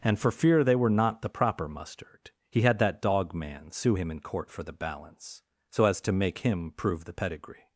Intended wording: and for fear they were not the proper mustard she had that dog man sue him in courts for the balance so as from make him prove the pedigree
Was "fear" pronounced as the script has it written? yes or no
yes